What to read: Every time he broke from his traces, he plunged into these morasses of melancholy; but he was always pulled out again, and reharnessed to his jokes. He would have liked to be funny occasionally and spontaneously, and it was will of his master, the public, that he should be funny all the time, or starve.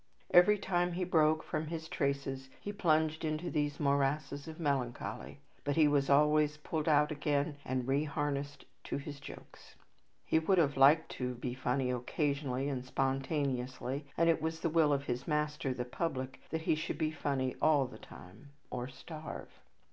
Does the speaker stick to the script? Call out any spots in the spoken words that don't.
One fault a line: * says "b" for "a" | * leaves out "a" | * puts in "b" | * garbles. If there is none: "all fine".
* puts in "the"